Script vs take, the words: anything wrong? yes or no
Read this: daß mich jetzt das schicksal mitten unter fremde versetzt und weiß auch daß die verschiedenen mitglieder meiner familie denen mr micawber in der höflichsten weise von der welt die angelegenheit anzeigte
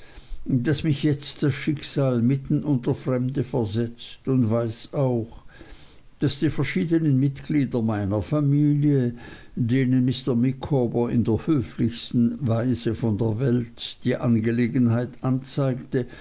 no